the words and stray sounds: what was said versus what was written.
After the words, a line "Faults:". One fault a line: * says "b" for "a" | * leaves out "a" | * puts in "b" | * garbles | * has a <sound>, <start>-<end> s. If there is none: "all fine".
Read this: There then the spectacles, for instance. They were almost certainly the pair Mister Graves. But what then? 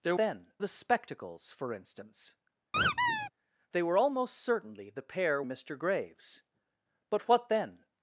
There then the spectacles, for instance. They were almost certainly the pair Mister Graves. But what then?
Faults:
* has a squeak, 2.7-3.3 s